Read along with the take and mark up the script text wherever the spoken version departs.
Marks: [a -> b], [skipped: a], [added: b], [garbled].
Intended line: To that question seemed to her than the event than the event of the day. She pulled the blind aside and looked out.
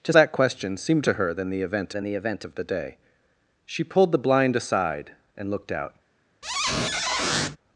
To that question seemed to her than the event than the event of the day. She pulled the blind aside and looked out.